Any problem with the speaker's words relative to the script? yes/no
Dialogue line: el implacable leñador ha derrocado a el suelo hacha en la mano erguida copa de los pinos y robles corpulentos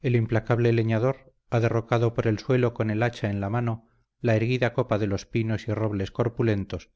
yes